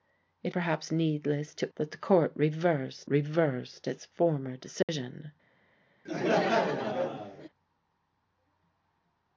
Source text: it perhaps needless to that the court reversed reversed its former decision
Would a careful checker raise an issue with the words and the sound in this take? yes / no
yes